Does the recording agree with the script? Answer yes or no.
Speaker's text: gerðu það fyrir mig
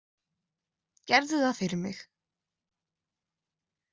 yes